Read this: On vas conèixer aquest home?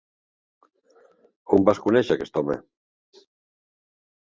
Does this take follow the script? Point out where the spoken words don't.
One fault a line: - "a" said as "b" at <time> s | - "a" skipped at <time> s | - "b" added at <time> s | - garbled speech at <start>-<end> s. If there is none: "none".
none